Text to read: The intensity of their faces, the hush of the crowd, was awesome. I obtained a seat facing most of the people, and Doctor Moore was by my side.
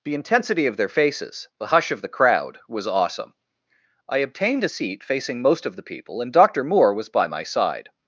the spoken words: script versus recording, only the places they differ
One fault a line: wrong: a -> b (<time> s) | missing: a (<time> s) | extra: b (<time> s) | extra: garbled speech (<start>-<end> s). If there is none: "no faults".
no faults